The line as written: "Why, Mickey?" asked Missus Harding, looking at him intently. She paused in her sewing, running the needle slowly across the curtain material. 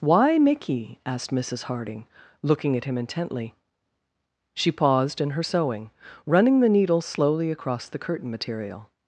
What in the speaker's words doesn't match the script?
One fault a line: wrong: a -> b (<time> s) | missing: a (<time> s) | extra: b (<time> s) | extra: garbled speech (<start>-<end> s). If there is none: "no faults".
no faults